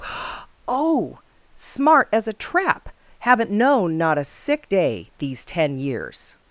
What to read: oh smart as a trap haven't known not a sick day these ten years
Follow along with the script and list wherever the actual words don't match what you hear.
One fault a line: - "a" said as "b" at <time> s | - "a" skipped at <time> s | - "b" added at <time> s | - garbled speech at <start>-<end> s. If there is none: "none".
none